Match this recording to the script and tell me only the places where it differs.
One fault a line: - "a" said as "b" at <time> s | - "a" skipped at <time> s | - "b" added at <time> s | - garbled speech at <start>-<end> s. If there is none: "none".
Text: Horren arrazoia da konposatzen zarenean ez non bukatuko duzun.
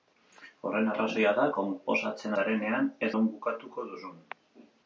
none